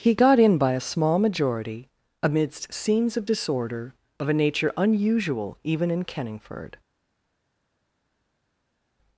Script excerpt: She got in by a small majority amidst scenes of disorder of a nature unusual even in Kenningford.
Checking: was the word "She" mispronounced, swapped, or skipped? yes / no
yes